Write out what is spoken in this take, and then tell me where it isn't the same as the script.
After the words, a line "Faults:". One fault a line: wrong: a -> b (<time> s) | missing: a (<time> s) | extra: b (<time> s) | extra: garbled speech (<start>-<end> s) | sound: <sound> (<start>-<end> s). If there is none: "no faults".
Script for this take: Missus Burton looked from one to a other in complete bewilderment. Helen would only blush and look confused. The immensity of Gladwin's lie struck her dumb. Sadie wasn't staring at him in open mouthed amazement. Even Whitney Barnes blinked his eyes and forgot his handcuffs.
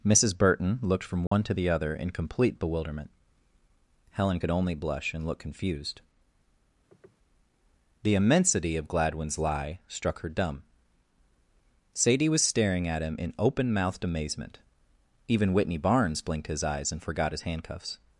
Missus Burton looked from one to the other in complete bewilderment. Helen could only blush and look confused. The immensity of Gladwin's lie struck her dumb. Sadie was staring at him in open mouthed amazement. Even Whitney Barnes blinked his eyes and forgot his handcuffs.
Faults:
sound: dropout (1.3-1.3 s)
wrong: a -> the (1.5 s)
wrong: would -> could (4.4 s)
sound: sniff (6.9-7.2 s)
wrong: wasn't -> was (12.3 s)